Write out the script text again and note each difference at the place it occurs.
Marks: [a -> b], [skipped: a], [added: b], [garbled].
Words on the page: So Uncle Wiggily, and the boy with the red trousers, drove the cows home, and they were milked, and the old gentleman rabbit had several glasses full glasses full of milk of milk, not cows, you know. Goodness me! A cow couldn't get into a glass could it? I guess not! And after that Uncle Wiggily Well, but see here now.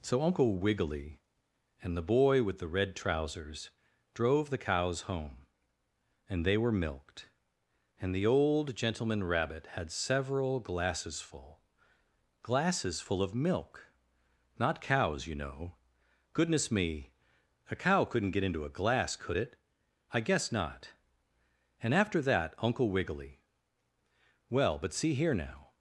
So Uncle Wiggily, and the boy with the red trousers, drove the cows home, and they were milked, and the old gentleman rabbit had several glasses full glasses full of milk [skipped: of milk,] not cows, you know. Goodness me! A cow couldn't get into a glass could it? I guess not! And after that Uncle Wiggily Well, but see here now.